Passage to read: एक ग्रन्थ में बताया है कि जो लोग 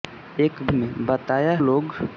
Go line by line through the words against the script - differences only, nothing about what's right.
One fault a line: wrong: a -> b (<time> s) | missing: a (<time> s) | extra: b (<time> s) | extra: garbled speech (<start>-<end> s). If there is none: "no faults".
missing: ग्रन्थ (0.5 s)
missing: है कि जो (1.6 s)